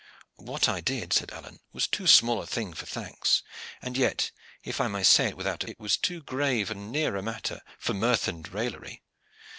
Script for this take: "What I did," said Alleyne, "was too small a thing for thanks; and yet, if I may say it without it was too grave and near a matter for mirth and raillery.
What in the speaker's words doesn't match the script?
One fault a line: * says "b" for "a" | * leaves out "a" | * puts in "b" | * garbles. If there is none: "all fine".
all fine